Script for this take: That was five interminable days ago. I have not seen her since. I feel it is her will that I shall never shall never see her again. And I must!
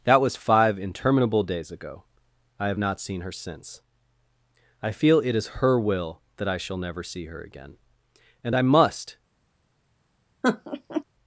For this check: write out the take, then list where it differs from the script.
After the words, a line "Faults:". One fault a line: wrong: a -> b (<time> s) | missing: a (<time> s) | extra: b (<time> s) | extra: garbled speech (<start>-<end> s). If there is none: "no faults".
That was five interminable days ago. I have not seen her since. I feel it is her will that I shall never see her again. And I must!
Faults:
missing: shall never (7.0 s)